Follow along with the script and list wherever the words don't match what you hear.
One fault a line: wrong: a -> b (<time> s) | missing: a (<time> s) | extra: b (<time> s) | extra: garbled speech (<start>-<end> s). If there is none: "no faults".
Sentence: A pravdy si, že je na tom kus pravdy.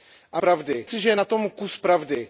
no faults